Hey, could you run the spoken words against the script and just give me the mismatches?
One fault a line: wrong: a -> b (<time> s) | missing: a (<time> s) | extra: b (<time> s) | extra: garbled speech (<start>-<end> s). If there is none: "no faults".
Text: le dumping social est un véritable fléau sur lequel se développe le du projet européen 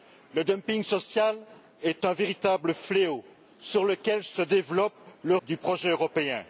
no faults